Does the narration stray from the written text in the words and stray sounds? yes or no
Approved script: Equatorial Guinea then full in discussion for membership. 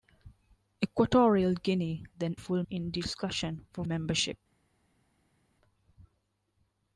no